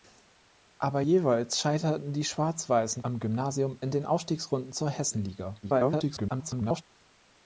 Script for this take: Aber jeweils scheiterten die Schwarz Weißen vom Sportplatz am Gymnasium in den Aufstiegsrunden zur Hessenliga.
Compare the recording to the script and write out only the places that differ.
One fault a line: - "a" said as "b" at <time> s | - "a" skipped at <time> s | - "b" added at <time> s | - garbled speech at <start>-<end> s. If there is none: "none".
- "vom Sportplatz" skipped at 3.0 s
- garbled speech at 5.6-6.8 s